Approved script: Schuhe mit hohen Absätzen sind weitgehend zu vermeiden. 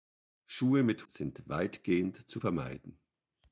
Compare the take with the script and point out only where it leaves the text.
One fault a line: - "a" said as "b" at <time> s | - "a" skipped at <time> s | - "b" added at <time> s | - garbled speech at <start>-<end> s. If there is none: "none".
- "hohen Absätzen" skipped at 1.1 s